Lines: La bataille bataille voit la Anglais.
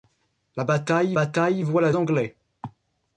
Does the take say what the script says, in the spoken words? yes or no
yes